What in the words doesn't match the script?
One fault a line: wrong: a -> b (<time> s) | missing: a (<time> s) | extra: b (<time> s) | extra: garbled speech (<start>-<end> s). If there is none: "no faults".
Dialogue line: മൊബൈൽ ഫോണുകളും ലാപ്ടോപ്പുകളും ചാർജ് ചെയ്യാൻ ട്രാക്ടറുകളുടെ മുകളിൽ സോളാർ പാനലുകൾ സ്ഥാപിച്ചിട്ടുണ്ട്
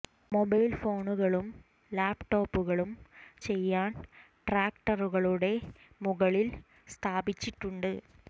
missing: ചാർജ് (2.9 s)
missing: സോളാർ പാനലുകൾ (6.5 s)